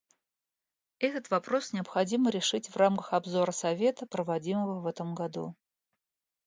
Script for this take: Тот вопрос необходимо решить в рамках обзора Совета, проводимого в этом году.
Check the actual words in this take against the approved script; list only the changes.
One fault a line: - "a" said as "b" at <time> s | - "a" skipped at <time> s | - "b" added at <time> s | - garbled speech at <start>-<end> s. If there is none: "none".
- "Тот" said as "Этот" at 1.0 s